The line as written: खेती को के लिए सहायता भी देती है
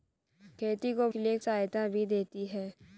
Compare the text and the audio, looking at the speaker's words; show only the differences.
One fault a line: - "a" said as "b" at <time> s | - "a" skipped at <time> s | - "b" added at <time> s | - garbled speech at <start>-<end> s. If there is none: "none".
none